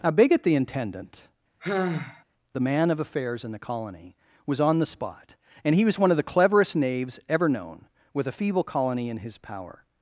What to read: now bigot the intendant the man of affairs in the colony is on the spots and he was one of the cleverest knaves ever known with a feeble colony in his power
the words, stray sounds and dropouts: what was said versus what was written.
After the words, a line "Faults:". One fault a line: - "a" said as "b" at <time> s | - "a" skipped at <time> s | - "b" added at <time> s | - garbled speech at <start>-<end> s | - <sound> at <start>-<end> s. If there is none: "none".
now bigot the intendant the man of affairs in the colony was on the spot and he was one of the cleverest knaves ever known with a feeble colony in his power
Faults:
- sigh at 1.6-2.2 s
- "is" said as "was" at 4.5 s
- "spots" said as "spot" at 4.8 s